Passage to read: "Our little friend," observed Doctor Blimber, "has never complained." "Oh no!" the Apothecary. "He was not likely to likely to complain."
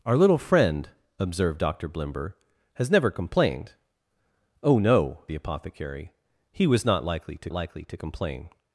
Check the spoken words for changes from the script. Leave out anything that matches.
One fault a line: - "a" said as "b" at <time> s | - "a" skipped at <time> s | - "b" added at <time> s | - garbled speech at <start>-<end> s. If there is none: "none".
none